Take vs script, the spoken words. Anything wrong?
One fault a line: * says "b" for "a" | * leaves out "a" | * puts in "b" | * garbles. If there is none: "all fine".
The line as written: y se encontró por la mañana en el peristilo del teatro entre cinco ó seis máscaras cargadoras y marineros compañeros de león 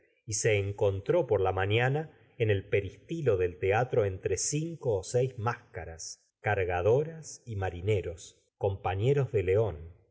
all fine